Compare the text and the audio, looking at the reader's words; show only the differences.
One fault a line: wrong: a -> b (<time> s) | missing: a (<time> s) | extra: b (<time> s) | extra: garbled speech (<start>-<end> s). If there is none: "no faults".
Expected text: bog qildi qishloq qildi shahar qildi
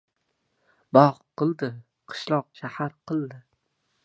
missing: qildi (2.5 s)